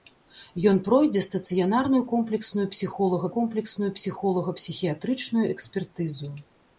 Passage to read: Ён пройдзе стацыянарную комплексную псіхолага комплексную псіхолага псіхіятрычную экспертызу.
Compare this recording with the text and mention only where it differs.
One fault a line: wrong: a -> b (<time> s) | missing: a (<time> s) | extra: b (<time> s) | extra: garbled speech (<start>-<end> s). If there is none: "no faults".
no faults